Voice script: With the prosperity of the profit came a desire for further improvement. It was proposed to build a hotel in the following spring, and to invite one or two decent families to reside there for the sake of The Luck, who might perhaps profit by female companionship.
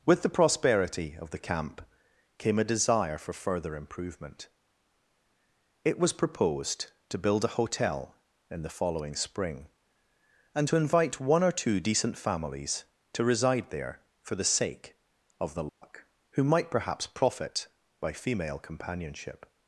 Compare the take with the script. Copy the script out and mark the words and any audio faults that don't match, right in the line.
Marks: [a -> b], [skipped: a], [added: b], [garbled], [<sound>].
With the prosperity of the [profit -> camp] came a desire for further improvement. It was proposed to build a hotel in the following spring, and to invite one or two decent families to reside there for the sake of The Luck, [dropout] who might perhaps profit by female companionship.